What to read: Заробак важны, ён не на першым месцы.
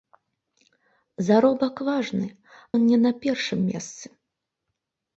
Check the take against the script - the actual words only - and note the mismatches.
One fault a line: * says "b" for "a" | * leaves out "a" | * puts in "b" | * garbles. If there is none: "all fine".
all fine